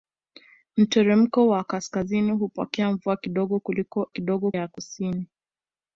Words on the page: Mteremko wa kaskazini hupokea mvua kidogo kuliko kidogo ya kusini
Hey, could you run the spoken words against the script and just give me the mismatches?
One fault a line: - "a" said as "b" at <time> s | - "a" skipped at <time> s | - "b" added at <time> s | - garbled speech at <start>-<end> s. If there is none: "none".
none